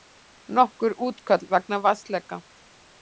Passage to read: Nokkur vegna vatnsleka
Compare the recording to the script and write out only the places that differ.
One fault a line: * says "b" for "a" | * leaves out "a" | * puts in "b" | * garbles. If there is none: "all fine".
* puts in "útköll"